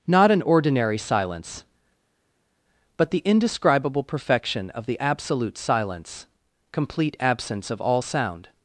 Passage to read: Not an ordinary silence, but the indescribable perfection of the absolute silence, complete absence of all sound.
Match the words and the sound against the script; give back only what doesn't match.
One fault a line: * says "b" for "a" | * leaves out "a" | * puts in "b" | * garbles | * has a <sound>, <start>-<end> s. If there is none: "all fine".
all fine